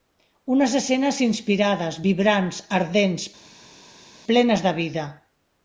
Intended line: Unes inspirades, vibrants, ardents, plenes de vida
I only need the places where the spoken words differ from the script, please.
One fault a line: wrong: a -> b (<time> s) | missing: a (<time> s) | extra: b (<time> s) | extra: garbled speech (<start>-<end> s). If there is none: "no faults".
extra: escenes (0.8 s)